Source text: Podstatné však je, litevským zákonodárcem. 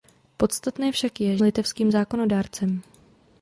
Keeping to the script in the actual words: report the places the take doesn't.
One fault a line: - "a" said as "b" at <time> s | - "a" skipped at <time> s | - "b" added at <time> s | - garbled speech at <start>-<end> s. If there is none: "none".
none